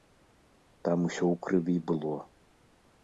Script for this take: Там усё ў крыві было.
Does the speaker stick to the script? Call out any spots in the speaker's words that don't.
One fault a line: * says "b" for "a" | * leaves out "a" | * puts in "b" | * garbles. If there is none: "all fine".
all fine